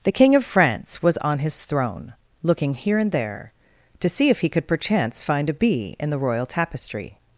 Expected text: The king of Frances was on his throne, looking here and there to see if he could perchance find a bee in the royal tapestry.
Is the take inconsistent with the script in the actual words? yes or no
yes